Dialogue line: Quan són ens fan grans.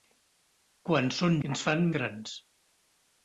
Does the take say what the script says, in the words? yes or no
yes